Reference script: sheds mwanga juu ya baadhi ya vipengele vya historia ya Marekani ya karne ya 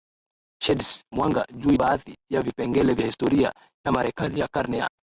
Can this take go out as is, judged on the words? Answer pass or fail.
fail